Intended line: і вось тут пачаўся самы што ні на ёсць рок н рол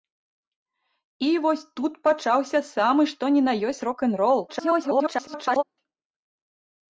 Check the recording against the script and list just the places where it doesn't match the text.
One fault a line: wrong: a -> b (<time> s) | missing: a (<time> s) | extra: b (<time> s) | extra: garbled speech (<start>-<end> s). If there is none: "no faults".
extra: garbled speech (4.5-5.6 s)